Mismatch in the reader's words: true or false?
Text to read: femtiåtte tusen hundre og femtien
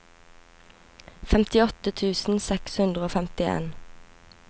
true